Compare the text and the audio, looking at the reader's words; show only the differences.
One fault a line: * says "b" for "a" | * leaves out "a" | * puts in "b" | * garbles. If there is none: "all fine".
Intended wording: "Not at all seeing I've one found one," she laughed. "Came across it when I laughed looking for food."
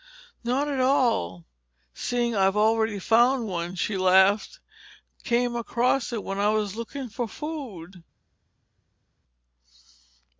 * says "already" for "one"
* says "was" for "laughed"